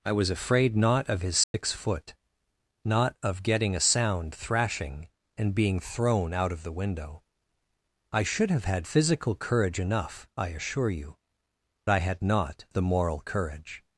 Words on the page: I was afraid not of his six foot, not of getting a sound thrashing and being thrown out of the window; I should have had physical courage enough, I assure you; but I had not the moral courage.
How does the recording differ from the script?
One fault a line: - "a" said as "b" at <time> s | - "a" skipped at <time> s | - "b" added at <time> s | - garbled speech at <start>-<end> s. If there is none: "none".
- "but" skipped at 11.2 s